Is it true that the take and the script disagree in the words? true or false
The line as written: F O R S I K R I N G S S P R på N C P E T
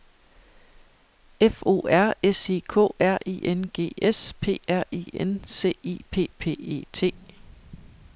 true